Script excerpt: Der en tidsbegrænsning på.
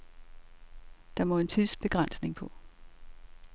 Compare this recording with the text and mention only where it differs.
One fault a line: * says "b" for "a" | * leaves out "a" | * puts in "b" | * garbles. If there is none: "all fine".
* puts in "må"